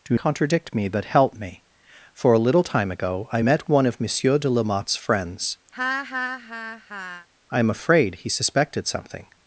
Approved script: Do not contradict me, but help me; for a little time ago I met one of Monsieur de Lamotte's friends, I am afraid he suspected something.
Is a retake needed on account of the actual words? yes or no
yes